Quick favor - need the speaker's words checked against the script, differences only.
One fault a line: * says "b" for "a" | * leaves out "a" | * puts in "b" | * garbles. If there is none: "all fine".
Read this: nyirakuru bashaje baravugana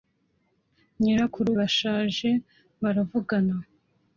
all fine